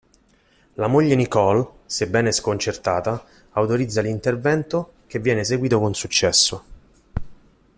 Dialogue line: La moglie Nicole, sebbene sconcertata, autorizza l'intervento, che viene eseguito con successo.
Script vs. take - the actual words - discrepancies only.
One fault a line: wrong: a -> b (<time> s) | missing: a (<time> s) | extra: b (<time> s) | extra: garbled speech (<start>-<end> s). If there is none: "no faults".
no faults